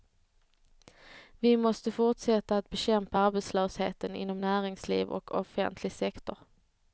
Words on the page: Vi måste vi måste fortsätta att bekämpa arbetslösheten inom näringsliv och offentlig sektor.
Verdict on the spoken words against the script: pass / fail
fail